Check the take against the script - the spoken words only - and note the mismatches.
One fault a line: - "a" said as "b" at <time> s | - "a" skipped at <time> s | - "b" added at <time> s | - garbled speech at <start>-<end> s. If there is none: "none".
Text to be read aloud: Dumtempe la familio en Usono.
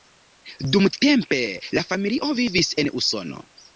- "vivis" added at 2.4 s